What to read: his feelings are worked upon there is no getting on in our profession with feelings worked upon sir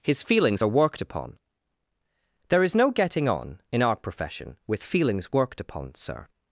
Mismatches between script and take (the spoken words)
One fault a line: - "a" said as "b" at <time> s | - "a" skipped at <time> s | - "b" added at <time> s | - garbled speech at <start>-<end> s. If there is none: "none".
none